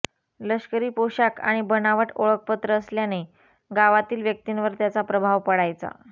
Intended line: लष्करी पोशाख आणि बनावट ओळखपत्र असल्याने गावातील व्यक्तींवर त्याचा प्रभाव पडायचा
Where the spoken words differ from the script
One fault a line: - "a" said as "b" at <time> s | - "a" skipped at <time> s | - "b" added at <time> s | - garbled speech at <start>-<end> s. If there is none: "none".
none